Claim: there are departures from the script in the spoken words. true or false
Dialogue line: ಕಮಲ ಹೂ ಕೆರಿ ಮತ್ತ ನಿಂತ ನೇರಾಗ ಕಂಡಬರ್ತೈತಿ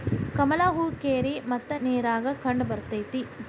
true